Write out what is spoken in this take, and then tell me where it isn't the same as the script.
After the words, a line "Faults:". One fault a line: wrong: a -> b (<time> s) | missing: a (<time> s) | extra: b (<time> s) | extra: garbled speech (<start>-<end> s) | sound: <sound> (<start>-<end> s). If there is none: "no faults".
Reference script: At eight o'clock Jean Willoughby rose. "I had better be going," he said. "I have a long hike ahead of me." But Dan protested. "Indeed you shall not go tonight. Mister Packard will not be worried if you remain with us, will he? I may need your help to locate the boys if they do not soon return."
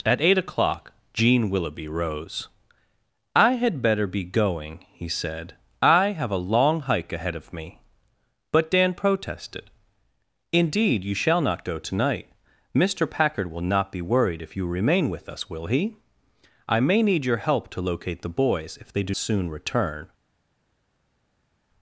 At eight o'clock Jean Willoughby rose. "I had better be going," he said. "I have a long hike ahead of me." But Dan protested. "Indeed you shall not go tonight. Mister Packard will not be worried if you remain with us, will he? I may need your help to locate the boys if they do soon return."
Faults:
missing: not (19.1 s)